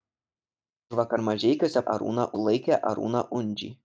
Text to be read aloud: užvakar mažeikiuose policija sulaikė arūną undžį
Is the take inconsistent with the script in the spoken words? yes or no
yes